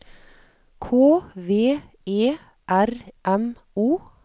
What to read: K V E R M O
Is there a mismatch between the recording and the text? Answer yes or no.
no